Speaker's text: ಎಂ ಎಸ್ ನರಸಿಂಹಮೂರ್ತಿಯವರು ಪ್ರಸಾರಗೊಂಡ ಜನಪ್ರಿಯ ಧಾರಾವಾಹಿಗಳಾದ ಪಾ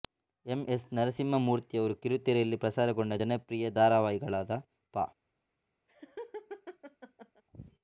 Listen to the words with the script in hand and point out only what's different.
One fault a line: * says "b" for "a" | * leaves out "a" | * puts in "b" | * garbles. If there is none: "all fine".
* puts in "ಕಿರುತೆರೆಯಲ್ಲಿ"